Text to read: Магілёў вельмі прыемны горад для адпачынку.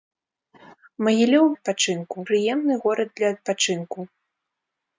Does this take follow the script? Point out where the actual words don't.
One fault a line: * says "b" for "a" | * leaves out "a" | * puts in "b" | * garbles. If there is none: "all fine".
* says "адпачынку" for "вельмі"